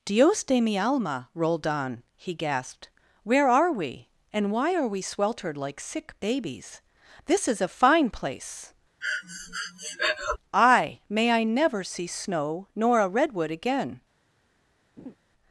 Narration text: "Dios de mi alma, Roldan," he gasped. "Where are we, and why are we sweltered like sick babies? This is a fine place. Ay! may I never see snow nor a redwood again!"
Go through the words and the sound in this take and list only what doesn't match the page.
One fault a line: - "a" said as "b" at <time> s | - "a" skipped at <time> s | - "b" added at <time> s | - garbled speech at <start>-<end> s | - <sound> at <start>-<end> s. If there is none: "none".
- breath at 9.0-10.4 s
- laugh at 15.0-15.2 s